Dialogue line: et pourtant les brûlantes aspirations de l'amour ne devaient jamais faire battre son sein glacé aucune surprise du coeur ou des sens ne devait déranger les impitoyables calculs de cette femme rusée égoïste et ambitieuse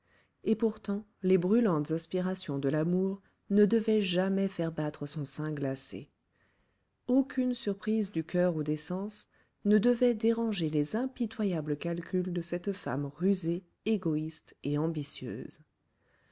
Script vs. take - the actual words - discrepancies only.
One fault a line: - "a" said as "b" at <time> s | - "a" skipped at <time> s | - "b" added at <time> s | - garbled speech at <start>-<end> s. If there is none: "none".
none